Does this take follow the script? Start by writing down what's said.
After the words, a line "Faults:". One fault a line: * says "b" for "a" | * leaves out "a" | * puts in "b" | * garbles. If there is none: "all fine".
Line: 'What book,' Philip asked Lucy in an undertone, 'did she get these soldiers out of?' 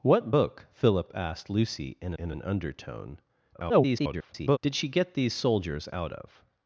'What book,' Philip asked Lucy in in an undertone, [garbled] 'did she get these soldiers out of?'
Faults:
* puts in "in"
* garbles